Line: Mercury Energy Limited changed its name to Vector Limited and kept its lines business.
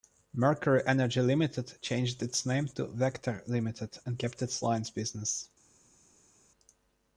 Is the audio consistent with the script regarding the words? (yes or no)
yes